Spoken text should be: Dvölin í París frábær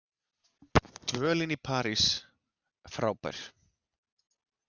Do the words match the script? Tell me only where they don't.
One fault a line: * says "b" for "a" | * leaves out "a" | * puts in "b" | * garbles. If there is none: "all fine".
all fine